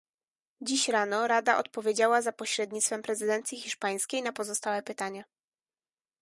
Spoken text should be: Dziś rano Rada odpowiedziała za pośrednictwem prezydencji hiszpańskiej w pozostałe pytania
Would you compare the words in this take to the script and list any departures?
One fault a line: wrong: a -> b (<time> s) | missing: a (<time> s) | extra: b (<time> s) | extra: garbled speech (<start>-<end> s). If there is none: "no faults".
wrong: w -> na (4.2 s)